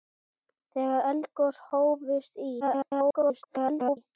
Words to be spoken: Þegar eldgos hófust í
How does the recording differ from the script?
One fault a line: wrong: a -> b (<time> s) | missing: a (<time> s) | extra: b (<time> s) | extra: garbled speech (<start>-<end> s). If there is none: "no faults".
extra: garbled speech (2.6-4.0 s)